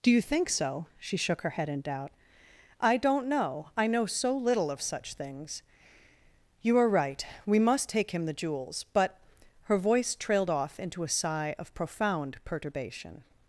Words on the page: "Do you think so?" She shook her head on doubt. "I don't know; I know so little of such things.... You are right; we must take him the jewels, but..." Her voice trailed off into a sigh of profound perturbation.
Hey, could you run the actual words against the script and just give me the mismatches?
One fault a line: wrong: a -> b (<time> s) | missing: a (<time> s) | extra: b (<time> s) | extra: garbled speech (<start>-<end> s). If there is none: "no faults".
wrong: on -> in (1.7 s)